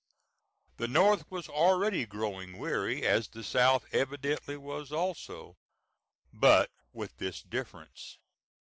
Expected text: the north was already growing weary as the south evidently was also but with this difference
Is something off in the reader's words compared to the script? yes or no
no